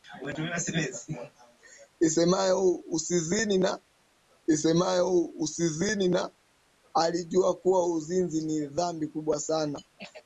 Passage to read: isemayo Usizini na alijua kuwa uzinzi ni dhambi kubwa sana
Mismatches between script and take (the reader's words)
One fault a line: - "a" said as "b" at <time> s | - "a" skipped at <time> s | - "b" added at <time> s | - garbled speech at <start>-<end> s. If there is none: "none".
- "isemayo Usizini na" added at 4.5 s